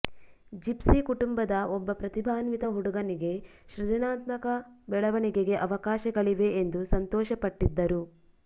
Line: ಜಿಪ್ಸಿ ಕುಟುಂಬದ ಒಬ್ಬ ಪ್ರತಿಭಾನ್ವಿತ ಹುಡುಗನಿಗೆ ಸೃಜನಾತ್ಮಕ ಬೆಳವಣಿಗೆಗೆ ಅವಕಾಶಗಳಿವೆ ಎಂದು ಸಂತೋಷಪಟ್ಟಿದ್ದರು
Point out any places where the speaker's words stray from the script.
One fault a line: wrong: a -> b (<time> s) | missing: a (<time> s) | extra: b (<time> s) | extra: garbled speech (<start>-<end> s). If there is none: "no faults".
no faults